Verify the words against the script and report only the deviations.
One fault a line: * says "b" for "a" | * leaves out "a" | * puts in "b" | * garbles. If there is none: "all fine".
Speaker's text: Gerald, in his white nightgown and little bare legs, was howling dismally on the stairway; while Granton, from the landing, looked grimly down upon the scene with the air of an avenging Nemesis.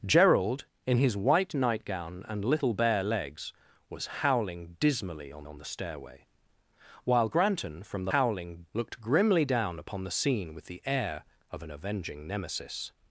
* puts in "on"
* says "howling" for "landing"